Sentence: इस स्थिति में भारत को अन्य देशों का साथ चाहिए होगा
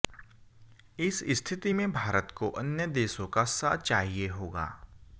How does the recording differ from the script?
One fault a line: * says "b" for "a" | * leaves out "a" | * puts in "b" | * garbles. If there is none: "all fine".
all fine